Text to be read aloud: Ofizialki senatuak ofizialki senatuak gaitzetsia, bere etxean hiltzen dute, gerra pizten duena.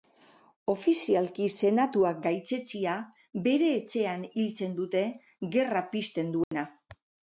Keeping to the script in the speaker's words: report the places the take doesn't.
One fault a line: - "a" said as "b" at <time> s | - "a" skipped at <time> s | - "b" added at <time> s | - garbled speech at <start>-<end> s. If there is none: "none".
- "ofizialki senatuak" skipped at 2.2 s